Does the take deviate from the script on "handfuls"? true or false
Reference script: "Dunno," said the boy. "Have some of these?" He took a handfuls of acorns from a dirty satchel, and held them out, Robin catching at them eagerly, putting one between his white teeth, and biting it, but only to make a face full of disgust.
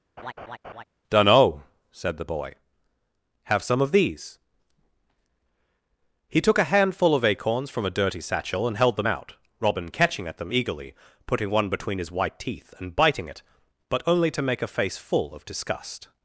true